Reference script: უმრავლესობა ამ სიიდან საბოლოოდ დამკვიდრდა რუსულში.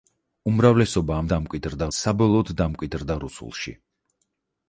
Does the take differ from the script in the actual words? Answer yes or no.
yes